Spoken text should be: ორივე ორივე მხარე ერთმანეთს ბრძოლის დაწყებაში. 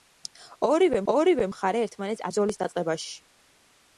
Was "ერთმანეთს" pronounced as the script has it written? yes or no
yes